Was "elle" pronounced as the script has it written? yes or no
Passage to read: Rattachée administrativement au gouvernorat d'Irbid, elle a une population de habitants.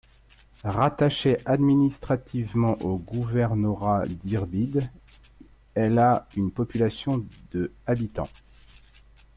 yes